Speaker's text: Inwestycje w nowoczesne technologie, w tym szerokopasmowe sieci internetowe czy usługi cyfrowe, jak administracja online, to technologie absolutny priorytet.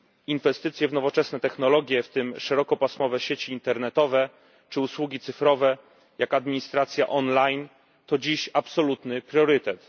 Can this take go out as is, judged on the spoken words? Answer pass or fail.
fail